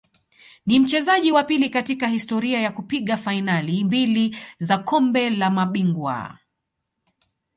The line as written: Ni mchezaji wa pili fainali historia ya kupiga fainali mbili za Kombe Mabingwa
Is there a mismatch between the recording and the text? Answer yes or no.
yes